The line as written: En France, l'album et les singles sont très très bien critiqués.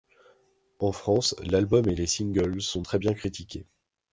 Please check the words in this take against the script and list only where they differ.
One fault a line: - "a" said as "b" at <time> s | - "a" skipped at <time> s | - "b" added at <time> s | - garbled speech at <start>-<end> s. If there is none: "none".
- "très" skipped at 3.0 s